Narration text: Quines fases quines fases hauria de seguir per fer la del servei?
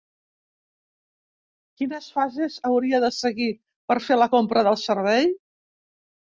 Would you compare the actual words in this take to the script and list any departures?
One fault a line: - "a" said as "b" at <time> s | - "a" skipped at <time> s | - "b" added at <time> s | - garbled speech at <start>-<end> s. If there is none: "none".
- "quines fases" skipped at 2.6 s
- "compra" added at 4.4 s